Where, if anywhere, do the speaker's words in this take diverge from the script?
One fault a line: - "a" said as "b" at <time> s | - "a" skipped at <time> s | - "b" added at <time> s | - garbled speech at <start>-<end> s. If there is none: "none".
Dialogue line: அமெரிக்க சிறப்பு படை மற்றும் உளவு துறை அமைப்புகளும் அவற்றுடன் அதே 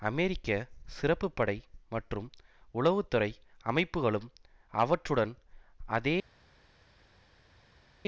none